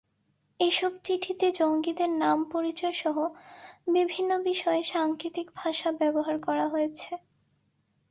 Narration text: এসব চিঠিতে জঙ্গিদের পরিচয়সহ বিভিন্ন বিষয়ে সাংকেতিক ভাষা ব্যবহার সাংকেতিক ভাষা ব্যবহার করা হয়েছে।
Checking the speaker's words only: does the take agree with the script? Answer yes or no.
no